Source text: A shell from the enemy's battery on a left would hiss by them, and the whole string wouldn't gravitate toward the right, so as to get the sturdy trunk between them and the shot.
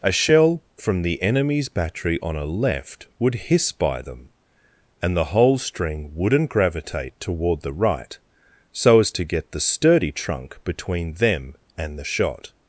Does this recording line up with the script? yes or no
yes